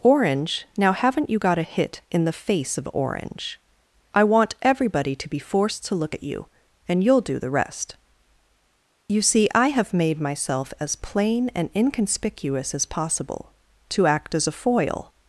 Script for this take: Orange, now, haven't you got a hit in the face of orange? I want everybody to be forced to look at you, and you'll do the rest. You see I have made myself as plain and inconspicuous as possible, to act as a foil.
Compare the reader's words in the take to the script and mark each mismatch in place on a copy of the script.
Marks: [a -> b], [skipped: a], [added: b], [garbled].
Orange, now, haven't you got a hit in the face of orange? I want everybody to be forced to look at you, and you'll do the rest. You see I have made myself as plain and inconspicuous as possible, to act as a foil.